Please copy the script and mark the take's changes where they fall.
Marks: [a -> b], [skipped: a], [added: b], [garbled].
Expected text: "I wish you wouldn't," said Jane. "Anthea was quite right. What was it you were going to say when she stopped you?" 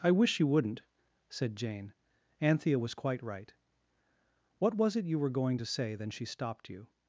"I wish you wouldn't," said Jane. "Anthea was quite right. What was it you were going to say [when -> then] she stopped you?"